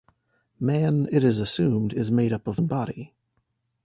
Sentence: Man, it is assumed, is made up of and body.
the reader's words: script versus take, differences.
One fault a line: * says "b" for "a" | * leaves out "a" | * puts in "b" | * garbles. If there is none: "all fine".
all fine